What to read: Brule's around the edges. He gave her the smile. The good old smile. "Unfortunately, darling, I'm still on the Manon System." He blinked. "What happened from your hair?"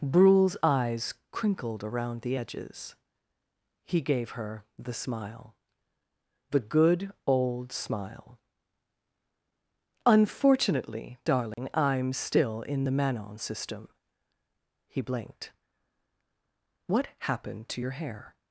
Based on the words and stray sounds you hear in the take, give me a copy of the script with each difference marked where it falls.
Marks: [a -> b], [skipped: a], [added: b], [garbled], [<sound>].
Brule's [added: eyes crinkled] around the edges. He gave her the smile. The good old smile. "Unfortunately, darling, [dropout] I'm still [on -> in] the Manon System." He blinked. "What happened [from -> to] your hair?"